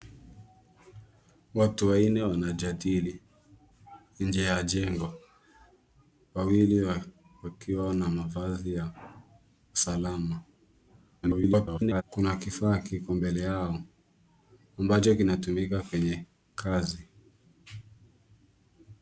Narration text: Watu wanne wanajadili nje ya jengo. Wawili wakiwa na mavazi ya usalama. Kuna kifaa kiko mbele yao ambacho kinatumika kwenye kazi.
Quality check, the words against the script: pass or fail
fail